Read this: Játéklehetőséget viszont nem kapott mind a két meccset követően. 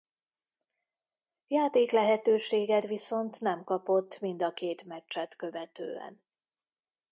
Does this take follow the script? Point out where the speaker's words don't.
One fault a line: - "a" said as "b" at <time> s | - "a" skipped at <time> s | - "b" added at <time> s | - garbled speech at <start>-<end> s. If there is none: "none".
none